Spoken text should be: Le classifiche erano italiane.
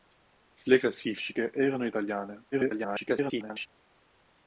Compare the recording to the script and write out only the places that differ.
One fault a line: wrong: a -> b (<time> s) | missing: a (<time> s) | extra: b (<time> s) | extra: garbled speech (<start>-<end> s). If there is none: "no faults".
extra: garbled speech (2.5-3.7 s)